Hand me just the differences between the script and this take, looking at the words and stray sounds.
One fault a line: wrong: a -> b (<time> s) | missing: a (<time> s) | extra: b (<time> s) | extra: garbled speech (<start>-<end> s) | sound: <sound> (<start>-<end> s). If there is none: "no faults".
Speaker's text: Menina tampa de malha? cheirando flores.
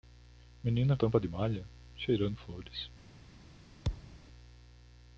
sound: thud (3.8-4.2 s)